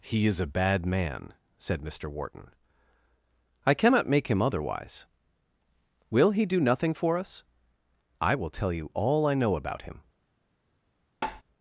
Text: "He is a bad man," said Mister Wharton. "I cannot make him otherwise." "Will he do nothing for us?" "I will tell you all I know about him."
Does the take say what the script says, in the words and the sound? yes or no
no